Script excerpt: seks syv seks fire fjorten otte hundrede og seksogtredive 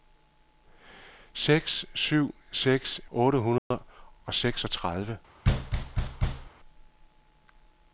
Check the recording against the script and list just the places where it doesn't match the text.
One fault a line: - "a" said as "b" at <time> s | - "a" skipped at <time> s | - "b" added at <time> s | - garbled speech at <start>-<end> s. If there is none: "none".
- "fire fjorten" skipped at 3.0 s